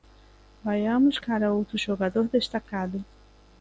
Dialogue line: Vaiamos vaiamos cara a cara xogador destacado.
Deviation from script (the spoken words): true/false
true